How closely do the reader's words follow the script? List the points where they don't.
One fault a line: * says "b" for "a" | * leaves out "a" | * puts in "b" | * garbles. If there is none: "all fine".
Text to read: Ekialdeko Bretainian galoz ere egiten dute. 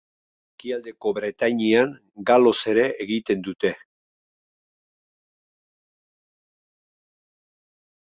all fine